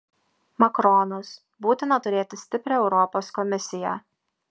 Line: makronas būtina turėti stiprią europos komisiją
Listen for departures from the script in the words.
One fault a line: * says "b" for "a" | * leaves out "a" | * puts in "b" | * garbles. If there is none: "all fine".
all fine